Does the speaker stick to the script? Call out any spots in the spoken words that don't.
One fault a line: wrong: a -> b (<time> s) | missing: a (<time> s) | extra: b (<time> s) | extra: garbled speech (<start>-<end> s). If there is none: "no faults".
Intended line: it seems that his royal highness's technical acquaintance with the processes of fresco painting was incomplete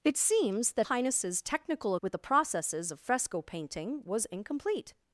missing: his royal (0.9 s)
missing: acquaintance (2.0 s)